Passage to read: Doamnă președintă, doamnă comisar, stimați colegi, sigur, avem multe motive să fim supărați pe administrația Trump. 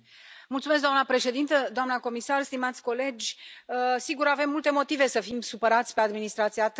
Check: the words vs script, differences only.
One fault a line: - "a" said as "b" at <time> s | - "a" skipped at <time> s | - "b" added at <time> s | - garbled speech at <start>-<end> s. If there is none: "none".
none